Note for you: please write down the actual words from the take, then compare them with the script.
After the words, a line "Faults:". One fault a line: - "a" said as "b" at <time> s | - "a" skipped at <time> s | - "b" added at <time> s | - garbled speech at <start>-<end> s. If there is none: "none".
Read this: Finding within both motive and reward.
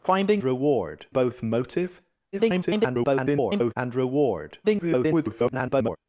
Finding reward both motive [garbled] and reward. [garbled]
Faults:
- "within" said as "reward" at 0.4 s
- garbled speech at 2.3-3.7 s
- garbled speech at 4.6-6.0 s